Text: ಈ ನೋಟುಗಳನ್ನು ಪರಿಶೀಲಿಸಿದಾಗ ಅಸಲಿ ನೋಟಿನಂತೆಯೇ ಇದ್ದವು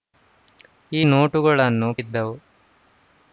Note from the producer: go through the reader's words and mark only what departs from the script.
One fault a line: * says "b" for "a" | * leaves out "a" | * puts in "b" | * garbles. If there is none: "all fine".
* leaves out "ಪರಿಶೀಲಿಸಿದಾಗ ಅಸಲಿ ನೋಟಿನಂತೆಯೇ"